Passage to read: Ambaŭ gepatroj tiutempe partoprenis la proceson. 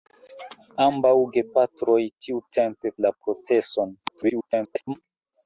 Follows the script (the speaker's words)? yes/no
no